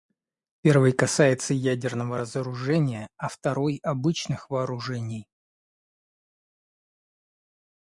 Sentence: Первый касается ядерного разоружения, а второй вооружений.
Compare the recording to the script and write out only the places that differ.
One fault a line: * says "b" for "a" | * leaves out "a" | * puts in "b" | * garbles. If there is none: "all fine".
* puts in "обычных"